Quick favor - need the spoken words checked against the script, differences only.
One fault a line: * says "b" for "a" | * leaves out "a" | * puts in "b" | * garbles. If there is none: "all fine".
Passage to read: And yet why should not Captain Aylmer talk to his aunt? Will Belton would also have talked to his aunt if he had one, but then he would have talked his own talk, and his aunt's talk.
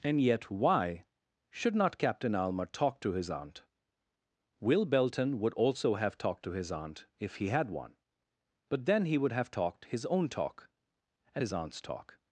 all fine